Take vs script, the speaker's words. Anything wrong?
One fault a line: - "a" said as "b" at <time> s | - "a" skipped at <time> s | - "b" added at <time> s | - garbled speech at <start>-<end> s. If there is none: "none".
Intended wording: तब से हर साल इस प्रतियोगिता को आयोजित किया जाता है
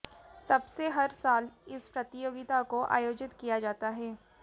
none